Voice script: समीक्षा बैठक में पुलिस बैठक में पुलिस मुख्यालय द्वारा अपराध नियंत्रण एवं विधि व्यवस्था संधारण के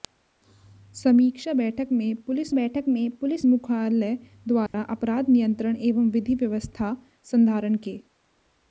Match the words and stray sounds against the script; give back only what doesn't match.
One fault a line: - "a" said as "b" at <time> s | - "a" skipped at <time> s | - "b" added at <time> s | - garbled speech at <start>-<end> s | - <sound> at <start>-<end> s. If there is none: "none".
- dropout at 4.7-4.7 s